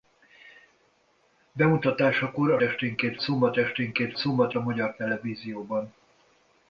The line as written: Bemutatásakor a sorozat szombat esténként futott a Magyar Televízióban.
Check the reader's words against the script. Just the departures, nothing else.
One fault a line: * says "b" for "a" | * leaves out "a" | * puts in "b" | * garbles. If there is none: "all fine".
* says "esténként" for "sorozat"
* says "szombat" for "futott"